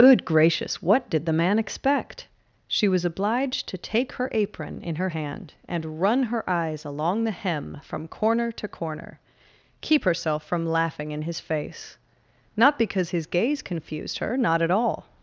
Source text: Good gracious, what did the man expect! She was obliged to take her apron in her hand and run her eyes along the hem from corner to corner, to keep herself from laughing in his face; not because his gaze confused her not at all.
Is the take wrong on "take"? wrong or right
right